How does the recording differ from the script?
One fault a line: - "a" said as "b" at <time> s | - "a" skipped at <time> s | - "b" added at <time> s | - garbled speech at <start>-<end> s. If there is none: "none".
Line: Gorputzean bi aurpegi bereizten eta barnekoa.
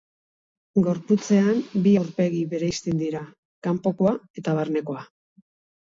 - "dira kanpokoa" added at 3.0 s